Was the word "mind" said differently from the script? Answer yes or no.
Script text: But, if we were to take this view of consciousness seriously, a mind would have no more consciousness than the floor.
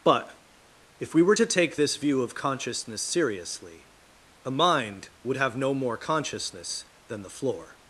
no